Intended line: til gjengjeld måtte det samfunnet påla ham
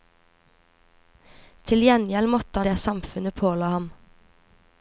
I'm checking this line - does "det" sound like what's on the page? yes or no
yes